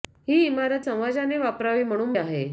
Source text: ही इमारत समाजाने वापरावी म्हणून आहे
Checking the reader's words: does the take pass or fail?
pass